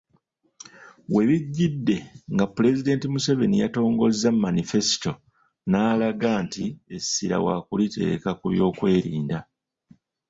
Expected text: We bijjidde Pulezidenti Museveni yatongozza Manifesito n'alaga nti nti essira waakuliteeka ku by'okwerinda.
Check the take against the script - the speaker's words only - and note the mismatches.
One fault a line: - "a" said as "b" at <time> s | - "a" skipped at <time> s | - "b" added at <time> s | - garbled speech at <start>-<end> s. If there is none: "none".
- "nga" added at 2.3 s
- "nti" skipped at 6.6 s